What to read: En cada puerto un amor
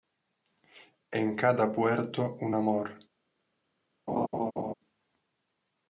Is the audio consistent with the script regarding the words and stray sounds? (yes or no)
no